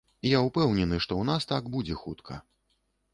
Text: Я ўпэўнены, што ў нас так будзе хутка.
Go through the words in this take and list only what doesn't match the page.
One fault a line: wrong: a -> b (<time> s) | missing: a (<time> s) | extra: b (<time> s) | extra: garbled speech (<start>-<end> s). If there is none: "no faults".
no faults